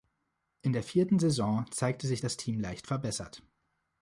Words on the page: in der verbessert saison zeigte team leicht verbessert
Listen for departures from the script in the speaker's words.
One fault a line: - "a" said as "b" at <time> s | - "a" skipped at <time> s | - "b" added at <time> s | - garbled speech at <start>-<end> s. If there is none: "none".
- "verbessert" said as "vierten" at 0.8 s
- "sich das" added at 2.1 s